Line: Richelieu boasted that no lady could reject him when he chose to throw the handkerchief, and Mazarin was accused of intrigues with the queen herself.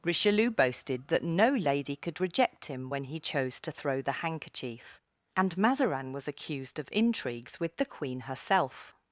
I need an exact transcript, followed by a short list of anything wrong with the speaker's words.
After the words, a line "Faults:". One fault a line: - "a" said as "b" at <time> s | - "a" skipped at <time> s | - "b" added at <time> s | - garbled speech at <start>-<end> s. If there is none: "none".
Richelieu boasted that no lady could reject him when he chose to throw the handkerchief, and Mazarin was accused of intrigues with the queen herself.
Faults:
none